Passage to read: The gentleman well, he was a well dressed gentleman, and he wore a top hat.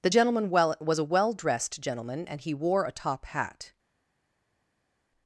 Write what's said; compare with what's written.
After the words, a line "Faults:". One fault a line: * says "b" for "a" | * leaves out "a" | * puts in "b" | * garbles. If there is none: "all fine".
The gentleman well, was a well dressed gentleman, and he wore a top hat.
Faults:
* leaves out "he"